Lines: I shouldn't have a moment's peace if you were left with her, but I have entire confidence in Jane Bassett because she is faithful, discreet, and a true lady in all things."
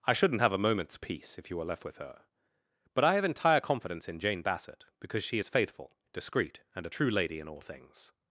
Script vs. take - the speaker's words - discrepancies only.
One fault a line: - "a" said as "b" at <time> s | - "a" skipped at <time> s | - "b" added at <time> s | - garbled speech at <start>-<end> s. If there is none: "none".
none